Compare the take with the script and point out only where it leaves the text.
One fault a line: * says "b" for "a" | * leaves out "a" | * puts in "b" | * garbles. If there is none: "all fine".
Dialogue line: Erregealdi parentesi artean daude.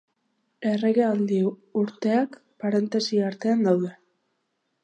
* puts in "urteak"